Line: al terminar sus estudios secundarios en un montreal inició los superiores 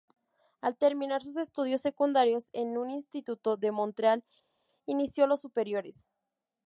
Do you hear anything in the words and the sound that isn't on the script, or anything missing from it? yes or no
yes